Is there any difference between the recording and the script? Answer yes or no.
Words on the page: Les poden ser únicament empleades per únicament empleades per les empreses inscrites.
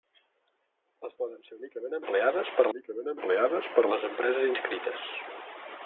no